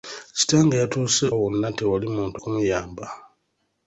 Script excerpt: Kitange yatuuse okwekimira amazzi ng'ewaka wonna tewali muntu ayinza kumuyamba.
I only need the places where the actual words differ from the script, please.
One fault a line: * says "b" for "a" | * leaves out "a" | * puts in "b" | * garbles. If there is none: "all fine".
* leaves out "okwekimira amazzi ng'ewaka"
* leaves out "ayinza"